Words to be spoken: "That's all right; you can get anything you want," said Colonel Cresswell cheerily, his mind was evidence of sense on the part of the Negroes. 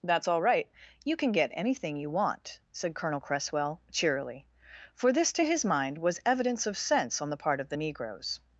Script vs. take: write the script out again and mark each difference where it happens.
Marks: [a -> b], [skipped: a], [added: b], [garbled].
"That's all right; you can get anything you want," said Colonel Cresswell cheerily, [added: for this to] his mind was evidence of sense on the part of the Negroes.